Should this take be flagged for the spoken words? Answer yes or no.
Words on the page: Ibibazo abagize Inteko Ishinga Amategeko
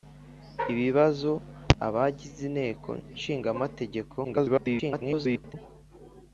yes